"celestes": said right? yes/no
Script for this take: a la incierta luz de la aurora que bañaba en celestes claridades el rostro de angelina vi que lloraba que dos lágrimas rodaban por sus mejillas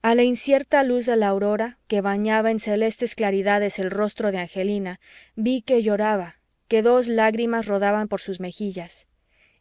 yes